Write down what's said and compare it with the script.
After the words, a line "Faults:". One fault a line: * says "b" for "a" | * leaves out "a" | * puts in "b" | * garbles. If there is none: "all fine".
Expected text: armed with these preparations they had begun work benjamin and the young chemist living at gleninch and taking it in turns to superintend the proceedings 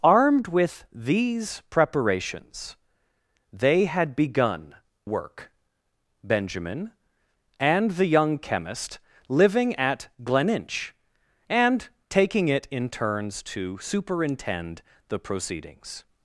armed with these preparations they had begun work benjamin and the young chemist living at gleninch and taking it in turns to superintend the proceedings
Faults:
all fine